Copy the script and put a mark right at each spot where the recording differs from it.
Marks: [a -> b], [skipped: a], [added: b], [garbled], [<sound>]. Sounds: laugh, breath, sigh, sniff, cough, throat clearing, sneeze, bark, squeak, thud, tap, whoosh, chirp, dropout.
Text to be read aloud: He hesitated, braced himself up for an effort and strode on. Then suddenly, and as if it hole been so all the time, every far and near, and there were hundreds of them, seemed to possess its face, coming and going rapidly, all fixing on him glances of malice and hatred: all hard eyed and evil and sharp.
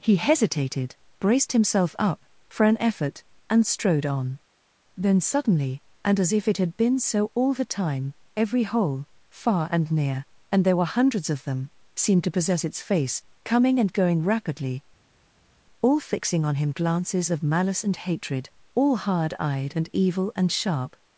He hesitated, braced himself up for an effort and strode on. Then suddenly, and as if it [hole -> had] been so all the time, every [added: hole] far and near, and there were hundreds of them, seemed to possess its face, coming and going rapidly, all fixing on him glances of malice and hatred: all hard eyed and evil and sharp.